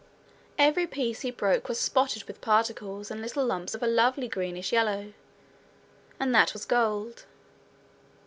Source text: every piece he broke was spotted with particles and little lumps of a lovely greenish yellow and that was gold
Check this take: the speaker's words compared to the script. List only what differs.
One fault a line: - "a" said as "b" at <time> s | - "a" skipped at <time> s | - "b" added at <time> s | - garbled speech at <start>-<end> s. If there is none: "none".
none